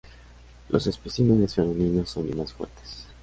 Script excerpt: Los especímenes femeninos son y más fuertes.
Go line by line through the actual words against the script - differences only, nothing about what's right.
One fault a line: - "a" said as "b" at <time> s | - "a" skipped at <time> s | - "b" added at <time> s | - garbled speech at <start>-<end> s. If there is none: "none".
none